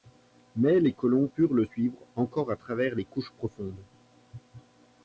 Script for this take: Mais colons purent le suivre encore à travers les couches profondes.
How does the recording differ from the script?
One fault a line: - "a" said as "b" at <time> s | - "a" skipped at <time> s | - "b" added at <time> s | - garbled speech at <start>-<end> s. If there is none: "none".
- "les" added at 0.8 s